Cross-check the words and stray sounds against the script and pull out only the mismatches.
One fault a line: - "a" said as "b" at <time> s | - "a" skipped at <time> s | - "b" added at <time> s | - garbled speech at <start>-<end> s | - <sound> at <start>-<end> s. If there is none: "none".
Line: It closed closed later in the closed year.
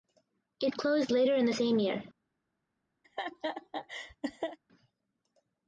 - "closed" skipped at 1.1 s
- "closed" said as "same" at 1.5 s
- laugh at 3.0-4.6 s